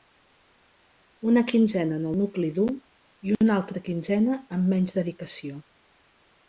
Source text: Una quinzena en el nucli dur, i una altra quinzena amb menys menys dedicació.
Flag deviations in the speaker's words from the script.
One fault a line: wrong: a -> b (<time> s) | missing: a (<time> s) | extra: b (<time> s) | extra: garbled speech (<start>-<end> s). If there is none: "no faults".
missing: menys (5.0 s)